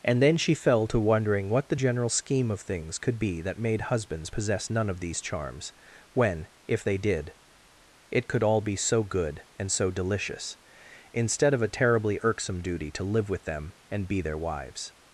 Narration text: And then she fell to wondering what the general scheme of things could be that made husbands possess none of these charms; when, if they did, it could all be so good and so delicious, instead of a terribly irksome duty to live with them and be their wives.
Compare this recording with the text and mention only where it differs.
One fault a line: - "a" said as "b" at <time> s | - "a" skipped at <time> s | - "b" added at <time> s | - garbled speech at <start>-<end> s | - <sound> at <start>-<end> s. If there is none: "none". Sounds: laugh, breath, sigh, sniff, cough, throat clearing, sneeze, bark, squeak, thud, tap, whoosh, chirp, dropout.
none